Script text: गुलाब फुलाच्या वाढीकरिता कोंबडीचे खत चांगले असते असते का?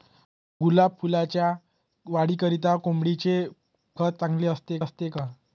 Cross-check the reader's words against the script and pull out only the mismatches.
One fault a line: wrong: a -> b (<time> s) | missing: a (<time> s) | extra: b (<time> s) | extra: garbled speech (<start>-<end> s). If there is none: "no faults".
no faults